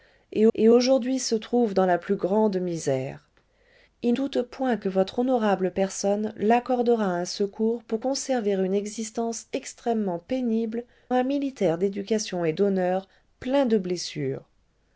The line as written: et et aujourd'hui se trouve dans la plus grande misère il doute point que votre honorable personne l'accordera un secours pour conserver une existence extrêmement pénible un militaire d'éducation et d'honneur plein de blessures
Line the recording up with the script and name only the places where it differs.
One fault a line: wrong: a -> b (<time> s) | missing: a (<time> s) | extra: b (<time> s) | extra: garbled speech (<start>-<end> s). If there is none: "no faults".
no faults